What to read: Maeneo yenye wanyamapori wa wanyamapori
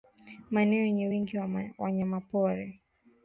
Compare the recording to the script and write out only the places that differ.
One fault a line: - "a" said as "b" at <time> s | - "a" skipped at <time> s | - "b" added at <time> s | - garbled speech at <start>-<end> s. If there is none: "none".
- "wanyamapori" said as "wingi" at 1.1 s